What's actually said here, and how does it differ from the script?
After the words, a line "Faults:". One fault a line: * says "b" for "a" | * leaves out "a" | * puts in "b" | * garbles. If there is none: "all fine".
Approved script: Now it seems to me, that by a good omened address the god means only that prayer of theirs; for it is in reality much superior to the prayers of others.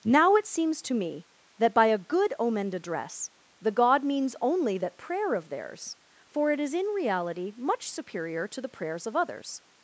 Now it seems to me, that by a good omened address the god means only that prayer of theirs; for it is in reality much superior to the prayers of others.
Faults:
all fine